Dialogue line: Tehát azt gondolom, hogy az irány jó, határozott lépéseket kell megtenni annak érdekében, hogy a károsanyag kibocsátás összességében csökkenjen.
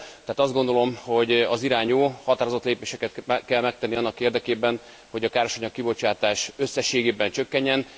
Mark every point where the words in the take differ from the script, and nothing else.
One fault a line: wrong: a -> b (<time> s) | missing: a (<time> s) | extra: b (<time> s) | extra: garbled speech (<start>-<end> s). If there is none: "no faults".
no faults